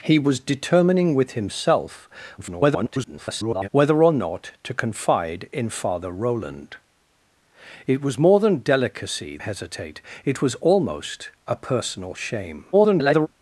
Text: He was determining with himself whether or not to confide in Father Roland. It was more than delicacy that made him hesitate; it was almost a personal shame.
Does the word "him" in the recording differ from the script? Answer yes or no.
yes